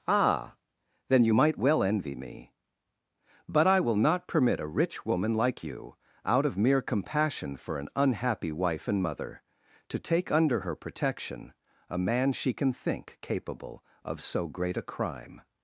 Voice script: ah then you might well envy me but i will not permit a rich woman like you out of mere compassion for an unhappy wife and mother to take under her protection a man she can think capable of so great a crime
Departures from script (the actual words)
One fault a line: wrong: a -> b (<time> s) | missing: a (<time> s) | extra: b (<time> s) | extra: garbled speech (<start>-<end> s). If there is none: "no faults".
no faults